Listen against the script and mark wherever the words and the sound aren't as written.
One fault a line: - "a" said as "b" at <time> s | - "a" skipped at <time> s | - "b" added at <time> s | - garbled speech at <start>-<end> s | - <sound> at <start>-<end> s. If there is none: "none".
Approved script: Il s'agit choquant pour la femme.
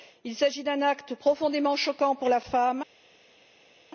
- "d'un acte profondément" added at 0.6 s